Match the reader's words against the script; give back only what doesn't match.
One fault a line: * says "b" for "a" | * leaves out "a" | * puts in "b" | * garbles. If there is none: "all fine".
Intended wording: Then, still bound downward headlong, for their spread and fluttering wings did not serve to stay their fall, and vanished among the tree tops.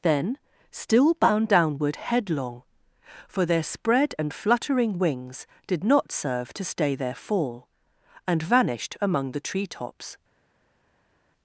all fine